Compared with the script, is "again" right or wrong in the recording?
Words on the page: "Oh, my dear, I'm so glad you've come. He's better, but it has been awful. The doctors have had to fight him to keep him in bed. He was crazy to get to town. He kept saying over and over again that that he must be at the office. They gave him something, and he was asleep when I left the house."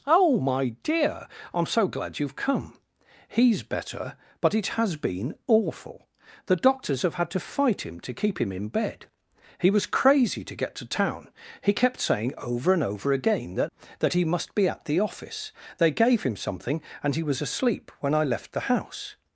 right